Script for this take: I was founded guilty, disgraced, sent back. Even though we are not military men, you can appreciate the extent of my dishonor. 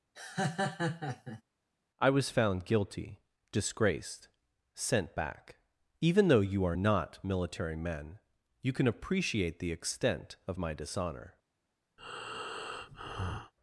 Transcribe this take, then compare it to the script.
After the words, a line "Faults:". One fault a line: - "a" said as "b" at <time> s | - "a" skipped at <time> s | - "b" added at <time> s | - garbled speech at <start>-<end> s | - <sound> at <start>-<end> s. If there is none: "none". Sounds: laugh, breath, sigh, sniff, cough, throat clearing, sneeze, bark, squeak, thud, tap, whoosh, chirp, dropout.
I was found guilty, disgraced, sent back. Even though you are not military men, you can appreciate the extent of my dishonor.
Faults:
- laugh at 0.1-1.4 s
- "founded" said as "found" at 2.3 s
- "we" said as "you" at 6.4 s
- breath at 12.0-13.5 s